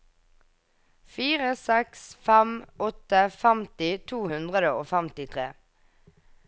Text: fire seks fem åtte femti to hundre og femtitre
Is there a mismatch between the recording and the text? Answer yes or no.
no